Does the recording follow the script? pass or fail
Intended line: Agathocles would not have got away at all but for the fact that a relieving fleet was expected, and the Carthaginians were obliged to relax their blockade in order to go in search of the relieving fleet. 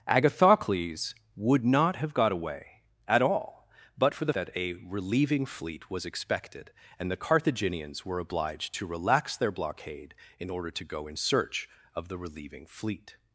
fail